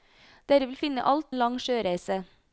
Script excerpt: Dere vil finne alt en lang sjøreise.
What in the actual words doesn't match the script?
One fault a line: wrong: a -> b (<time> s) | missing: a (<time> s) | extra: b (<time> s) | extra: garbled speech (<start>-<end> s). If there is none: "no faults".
no faults